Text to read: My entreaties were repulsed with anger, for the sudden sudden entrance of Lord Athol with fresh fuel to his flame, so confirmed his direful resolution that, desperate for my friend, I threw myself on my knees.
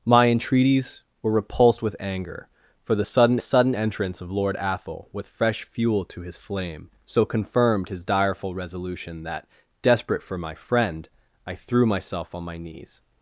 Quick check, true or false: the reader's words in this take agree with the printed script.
true